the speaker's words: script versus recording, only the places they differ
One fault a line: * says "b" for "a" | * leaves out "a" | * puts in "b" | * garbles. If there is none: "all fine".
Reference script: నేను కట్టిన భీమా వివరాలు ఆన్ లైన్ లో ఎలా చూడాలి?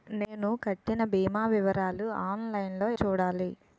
* leaves out "ఎలా"